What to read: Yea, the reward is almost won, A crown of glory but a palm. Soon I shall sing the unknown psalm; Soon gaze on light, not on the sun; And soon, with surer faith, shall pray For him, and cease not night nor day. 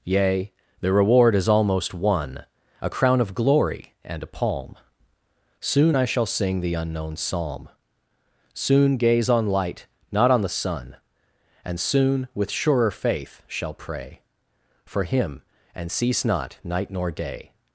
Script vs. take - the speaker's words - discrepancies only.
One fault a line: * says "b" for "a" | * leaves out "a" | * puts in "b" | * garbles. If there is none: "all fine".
* says "and" for "but"